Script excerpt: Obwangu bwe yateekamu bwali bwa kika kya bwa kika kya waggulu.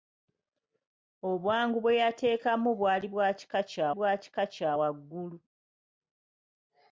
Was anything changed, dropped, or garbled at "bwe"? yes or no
no